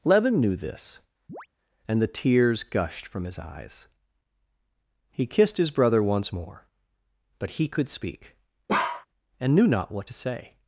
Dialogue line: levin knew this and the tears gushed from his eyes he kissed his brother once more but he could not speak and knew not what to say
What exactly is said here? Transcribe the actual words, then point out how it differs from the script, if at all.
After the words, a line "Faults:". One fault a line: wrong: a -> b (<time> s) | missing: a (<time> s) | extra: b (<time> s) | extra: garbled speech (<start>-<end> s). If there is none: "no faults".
levin knew this and the tears gushed from his eyes he kissed his brother once more but he could speak and knew not what to say
Faults:
missing: not (7.9 s)